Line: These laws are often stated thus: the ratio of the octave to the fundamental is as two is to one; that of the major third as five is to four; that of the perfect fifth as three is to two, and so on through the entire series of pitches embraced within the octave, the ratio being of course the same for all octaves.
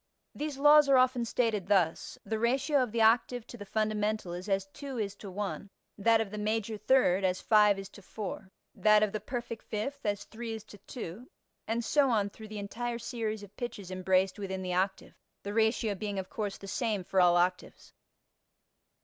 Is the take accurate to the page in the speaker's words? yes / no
yes